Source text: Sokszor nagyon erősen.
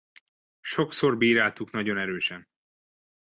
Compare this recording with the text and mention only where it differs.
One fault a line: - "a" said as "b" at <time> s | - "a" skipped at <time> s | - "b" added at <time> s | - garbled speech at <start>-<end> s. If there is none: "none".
- "bíráltuk" added at 1.2 s